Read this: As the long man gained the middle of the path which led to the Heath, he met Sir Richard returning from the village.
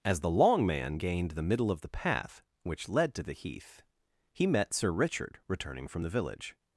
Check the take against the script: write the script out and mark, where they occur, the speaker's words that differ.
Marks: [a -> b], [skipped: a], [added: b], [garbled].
As the long man gained the middle of the path which led to the Heath, he met Sir Richard returning from the village.